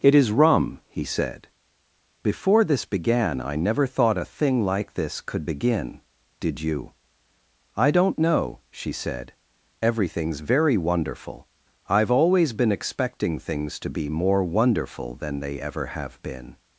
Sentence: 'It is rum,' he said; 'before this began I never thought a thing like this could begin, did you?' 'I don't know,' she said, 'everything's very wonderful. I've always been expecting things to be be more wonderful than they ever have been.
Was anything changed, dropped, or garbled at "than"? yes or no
no